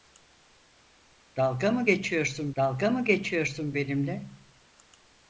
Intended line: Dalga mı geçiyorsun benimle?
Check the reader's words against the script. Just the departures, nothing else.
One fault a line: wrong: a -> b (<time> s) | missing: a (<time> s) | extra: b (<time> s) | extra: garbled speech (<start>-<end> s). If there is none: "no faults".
extra: dalga mı geçiyorsun (2.6 s)